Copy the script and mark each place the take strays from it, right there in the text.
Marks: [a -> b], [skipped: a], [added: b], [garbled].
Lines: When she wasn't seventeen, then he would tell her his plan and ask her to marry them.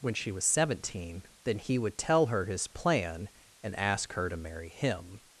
When she [wasn't -> was] seventeen, then he would tell her his plan and ask her to marry [them. -> him]